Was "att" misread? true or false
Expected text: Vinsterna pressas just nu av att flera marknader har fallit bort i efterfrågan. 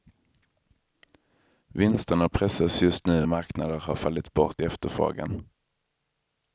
true